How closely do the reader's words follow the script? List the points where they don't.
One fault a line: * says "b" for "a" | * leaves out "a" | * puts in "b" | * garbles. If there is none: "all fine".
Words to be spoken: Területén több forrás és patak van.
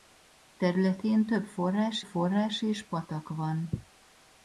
* puts in "forrás"